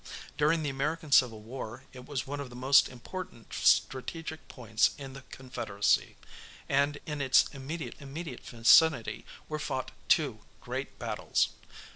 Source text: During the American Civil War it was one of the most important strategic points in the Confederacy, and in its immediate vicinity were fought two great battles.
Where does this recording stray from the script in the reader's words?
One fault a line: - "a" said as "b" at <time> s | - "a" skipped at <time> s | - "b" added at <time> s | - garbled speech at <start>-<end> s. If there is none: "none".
- "immediate" added at 8.0 s